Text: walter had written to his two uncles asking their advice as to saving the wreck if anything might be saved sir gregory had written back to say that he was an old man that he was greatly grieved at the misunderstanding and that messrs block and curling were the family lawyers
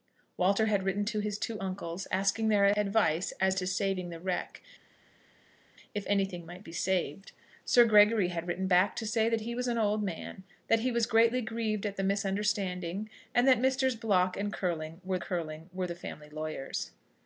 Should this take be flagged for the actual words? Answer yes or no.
yes